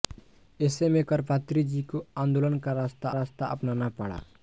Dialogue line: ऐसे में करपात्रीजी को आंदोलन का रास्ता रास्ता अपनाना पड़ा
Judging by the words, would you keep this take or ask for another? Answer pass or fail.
pass